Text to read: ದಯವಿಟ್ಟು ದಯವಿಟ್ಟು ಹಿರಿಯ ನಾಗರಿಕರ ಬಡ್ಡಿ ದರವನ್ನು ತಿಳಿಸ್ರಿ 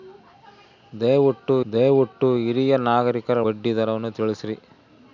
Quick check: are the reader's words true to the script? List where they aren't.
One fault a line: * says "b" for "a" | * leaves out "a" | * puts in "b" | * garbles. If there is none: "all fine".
all fine